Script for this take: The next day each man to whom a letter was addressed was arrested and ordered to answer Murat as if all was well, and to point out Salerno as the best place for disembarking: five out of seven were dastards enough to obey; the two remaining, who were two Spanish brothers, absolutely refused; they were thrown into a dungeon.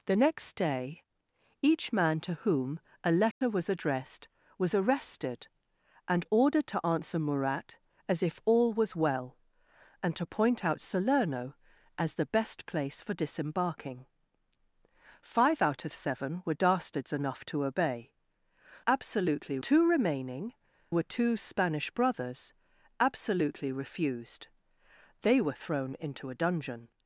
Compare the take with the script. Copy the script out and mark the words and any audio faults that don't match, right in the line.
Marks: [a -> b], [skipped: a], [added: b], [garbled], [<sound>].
The next day each man to whom a letter [dropout] was addressed was arrested and ordered to answer Murat as if all was well, and to point out Salerno as the best place for disembarking: five out of seven were dastards enough to obey; [the -> absolutely] two remaining, [skipped: who] were two Spanish brothers, absolutely refused; they were thrown into a dungeon.